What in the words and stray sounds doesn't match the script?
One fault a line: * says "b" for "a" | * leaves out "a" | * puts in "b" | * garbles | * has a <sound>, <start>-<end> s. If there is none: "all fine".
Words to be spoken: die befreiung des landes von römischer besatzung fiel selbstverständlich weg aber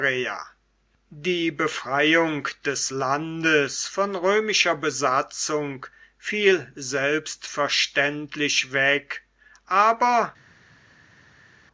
all fine